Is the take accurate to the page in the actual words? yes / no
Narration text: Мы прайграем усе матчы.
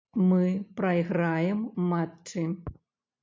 no